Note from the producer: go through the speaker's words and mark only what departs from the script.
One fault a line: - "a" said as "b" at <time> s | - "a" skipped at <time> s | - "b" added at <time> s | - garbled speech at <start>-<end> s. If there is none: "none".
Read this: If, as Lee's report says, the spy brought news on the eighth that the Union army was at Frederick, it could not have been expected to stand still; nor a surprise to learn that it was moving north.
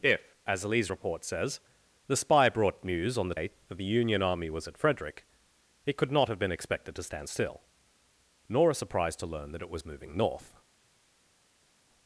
none